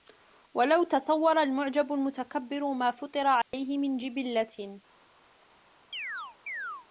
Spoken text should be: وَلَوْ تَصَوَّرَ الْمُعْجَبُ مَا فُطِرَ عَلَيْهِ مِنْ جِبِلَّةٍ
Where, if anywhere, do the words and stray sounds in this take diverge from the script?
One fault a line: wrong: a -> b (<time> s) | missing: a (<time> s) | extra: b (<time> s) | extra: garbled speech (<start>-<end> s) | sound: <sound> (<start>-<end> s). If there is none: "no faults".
extra: الْمُتَكَبِّرُ (1.9 s)
sound: dropout (3.4-3.5 s)
sound: chirp (5.9-6.9 s)